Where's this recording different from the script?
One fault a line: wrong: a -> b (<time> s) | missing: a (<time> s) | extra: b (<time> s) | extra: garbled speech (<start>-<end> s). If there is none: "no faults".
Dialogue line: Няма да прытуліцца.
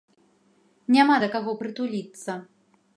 extra: каго (1.3 s)